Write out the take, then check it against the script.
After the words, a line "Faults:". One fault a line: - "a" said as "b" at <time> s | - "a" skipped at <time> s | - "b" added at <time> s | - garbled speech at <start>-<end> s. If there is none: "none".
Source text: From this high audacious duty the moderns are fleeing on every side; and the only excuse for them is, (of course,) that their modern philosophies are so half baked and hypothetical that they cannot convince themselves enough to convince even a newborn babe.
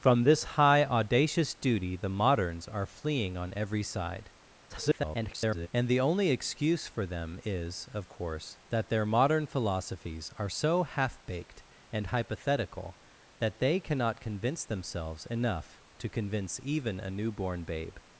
From this high audacious duty the moderns are fleeing on every side; [garbled] and the only excuse for them is, (of course,) that their modern philosophies are so half baked and hypothetical that they cannot convince themselves enough to convince even a newborn babe.
Faults:
- garbled speech at 4.7-5.7 s